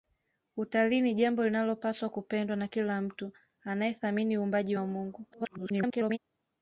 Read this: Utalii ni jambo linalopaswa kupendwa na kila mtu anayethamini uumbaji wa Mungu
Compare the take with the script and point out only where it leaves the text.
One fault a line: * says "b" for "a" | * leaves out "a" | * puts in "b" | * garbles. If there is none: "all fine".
* garbles